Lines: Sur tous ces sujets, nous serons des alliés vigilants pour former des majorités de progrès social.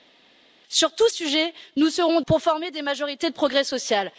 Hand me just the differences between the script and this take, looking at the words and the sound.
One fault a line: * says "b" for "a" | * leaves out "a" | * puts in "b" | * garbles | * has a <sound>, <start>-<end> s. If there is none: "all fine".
* leaves out "ces"
* leaves out "des alliés vigilants"